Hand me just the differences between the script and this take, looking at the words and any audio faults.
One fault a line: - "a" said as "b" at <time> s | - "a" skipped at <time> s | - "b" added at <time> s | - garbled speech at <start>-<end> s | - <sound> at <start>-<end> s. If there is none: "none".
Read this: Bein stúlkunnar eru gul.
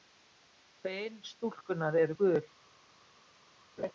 - laugh at 3.8-3.9 s